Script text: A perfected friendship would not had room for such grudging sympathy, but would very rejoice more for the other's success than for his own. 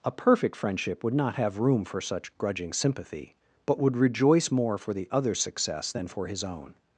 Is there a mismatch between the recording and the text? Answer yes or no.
yes